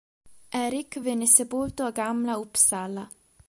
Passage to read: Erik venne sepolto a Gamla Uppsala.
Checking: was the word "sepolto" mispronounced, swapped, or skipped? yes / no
no